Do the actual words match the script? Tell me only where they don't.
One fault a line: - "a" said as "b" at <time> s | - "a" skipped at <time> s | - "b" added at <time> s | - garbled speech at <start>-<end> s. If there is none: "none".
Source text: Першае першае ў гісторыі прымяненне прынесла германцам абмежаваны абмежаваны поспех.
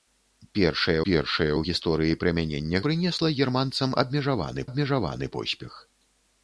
none